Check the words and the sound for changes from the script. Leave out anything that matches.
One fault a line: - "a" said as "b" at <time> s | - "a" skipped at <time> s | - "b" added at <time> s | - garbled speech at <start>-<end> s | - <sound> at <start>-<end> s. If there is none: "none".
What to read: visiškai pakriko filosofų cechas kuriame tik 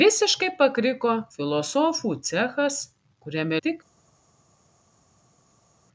none